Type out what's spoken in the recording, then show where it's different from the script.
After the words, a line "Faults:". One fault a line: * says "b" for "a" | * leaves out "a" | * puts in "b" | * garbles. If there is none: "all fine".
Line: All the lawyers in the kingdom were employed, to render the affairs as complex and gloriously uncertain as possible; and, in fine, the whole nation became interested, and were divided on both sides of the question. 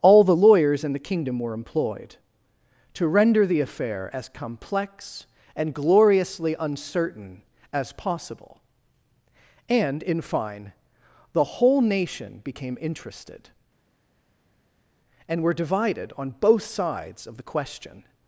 All the lawyers in the kingdom were employed, to render the affair as complex and gloriously uncertain as possible; and, in fine, the whole nation became interested, and were divided on both sides of the question.
Faults:
* says "affair" for "affairs"